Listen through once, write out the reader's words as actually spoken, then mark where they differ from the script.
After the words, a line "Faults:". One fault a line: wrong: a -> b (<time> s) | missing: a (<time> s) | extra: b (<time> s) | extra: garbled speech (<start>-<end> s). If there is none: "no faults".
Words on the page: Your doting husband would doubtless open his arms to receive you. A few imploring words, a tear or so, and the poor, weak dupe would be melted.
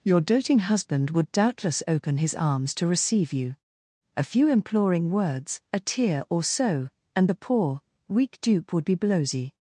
Your doting husband would doubtless open his arms to receive you. A few imploring words, a tear or so, and the poor, weak dupe would be blowsy.
Faults:
wrong: melted -> blowsy (9.0 s)